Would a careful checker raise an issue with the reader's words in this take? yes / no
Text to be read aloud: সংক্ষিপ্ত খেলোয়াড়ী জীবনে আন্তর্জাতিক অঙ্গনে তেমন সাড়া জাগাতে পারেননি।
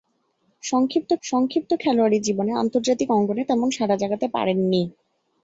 yes